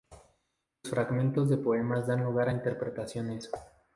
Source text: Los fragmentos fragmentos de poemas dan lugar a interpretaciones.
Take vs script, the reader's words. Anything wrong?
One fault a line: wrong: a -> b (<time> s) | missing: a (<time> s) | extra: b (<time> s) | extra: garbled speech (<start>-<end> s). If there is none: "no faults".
missing: fragmentos (1.5 s)